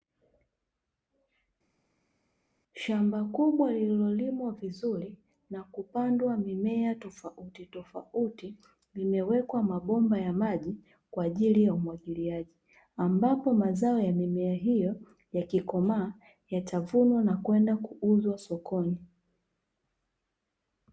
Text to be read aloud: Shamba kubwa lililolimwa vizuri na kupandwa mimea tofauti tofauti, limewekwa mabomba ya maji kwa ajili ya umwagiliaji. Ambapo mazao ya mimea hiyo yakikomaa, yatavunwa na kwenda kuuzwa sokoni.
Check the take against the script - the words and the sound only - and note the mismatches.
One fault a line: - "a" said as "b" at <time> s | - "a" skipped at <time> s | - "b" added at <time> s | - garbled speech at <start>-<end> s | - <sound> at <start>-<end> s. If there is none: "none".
none